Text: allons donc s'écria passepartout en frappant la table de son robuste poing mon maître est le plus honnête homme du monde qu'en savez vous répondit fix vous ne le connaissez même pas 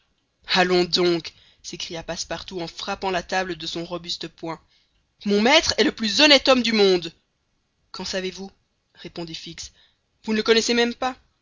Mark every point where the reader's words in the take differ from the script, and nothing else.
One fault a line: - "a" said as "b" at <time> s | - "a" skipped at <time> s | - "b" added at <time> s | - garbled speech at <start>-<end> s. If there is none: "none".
none